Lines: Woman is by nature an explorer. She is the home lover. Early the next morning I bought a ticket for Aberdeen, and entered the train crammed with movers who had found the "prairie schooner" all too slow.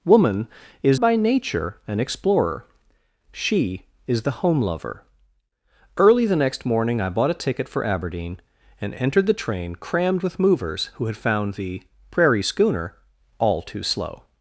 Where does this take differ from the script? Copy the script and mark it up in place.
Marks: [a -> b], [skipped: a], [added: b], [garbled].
Woman is by nature an explorer. She is the home lover. Early the next morning I bought a ticket for Aberdeen, and entered the train crammed with movers who had found the "prairie schooner" all too slow.